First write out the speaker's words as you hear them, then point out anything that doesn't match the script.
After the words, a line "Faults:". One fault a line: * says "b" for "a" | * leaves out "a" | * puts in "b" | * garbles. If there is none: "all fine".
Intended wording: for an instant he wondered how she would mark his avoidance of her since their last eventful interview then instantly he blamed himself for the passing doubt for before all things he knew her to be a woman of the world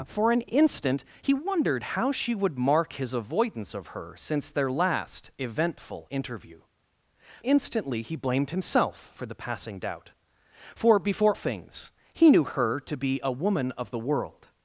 for an instant he wondered how she would mark his avoidance of her since their last eventful interview instantly he blamed himself for the passing doubt for before things he knew her to be a woman of the world
Faults:
* leaves out "then"
* leaves out "all"